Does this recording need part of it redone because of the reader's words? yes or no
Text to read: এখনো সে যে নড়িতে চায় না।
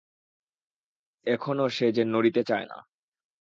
no